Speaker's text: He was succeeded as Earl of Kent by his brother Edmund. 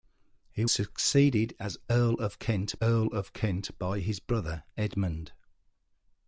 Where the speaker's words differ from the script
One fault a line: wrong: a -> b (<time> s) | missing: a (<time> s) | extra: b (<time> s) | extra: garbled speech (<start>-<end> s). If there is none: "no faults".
missing: was (0.7 s)
extra: Earl of Kent (2.8 s)